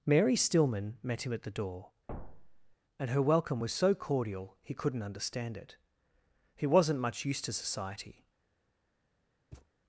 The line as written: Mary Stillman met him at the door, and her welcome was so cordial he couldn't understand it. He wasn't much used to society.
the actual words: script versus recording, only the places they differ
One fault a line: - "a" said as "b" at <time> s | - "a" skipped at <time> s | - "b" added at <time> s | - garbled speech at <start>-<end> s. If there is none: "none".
none